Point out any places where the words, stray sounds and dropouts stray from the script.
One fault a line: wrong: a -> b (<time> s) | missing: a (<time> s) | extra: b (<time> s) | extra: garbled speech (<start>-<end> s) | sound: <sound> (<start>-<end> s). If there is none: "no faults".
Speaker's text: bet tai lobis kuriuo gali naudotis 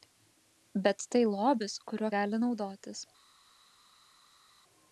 no faults